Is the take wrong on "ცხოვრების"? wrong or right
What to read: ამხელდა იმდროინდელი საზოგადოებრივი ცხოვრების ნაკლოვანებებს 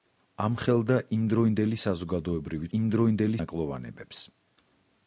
wrong